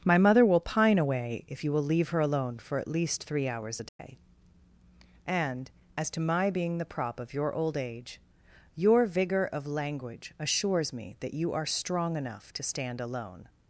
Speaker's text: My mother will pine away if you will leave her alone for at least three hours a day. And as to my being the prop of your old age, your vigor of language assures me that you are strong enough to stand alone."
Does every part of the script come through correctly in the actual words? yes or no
yes